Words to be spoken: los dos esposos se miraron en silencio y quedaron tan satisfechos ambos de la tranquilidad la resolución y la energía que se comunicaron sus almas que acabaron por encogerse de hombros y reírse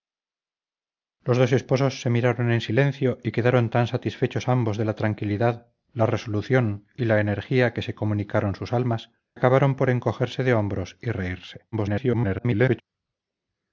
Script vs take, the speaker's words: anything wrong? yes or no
yes